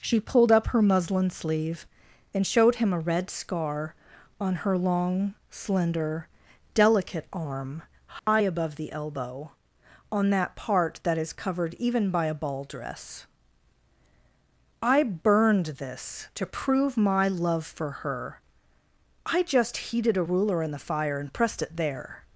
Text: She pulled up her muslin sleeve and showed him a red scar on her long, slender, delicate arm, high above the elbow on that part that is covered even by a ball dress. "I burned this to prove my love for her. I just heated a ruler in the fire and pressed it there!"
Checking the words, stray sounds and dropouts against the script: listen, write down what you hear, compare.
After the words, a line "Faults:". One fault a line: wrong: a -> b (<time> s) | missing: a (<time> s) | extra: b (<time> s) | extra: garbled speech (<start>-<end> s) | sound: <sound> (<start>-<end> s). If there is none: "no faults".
She pulled up her muslin sleeve and showed him a red scar on her long, slender, delicate arm, high above the elbow on that part that is covered even by a ball dress. "I burned this to prove my love for her. I just heated a ruler in the fire and pressed it there!"
Faults:
sound: dropout (8.2-8.3 s)